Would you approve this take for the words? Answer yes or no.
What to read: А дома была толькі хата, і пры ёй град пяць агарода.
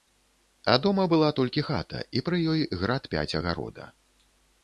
yes